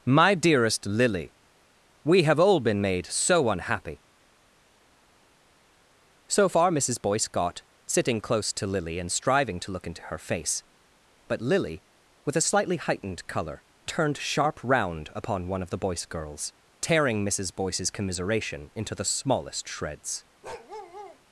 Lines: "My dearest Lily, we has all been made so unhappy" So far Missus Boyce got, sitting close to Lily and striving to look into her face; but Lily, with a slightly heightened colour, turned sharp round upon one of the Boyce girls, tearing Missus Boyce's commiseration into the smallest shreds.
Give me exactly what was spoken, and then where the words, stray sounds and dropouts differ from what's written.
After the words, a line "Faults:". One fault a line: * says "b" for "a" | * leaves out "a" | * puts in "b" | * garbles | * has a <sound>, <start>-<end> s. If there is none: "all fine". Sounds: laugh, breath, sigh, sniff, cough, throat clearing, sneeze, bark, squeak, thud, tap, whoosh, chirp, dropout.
"My dearest Lily, we have all been made so unhappy" So far Missus Boyce got, sitting close to Lily and striving to look into her face; but Lily, with a slightly heightened colour, turned sharp round upon one of the Boyce girls, tearing Missus Boyce's commiseration into the smallest shreds.
Faults:
* says "have" for "has"
* has a bark, 20.4-21.2 s